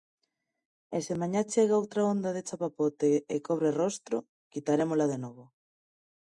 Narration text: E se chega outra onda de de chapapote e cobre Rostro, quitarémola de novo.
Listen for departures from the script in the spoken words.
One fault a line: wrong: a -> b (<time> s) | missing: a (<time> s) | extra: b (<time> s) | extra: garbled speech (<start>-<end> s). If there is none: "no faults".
extra: mañá (1.2 s)
missing: de (2.5 s)